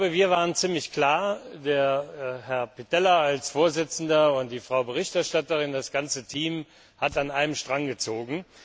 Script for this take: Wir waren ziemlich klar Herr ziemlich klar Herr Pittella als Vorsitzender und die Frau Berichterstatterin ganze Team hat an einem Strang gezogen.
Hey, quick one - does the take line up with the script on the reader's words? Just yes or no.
no